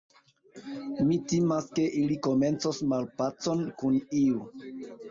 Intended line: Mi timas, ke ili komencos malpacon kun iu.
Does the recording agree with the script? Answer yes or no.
yes